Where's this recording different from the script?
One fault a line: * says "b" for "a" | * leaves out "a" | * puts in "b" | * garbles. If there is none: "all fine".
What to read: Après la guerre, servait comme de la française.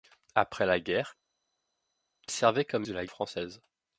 all fine